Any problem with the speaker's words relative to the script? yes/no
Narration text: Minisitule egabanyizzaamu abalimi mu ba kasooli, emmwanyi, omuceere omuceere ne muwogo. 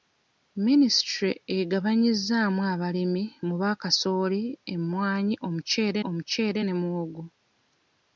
no